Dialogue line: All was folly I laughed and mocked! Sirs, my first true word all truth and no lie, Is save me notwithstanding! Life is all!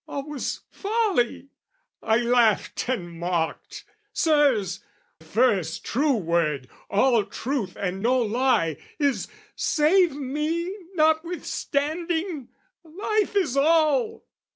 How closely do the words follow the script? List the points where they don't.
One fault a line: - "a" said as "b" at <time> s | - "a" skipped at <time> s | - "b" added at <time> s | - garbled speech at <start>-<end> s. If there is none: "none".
- "my" skipped at 4.8 s